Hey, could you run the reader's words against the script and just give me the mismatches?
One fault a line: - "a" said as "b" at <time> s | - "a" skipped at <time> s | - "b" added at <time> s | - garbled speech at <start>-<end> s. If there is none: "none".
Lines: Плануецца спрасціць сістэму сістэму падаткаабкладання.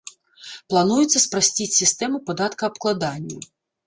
- "сістэму" skipped at 2.2 s